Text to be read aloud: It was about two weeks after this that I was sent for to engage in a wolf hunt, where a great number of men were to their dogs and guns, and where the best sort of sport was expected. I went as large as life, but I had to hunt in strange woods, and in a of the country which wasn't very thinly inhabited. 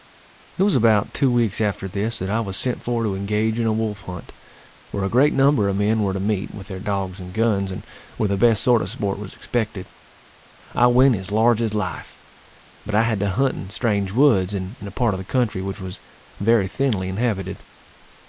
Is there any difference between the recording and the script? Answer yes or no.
yes